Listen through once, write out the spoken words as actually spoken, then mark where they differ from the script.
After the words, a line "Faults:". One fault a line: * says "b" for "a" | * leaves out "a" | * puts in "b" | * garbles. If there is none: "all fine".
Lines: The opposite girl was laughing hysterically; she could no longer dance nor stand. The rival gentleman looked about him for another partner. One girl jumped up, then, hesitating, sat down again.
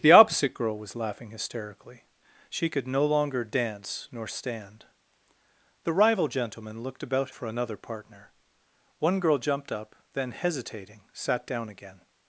The opposite girl was laughing hysterically; she could no longer dance nor stand. The rival gentleman looked about for another partner. One girl jumped up, then, hesitating, sat down again.
Faults:
* leaves out "him"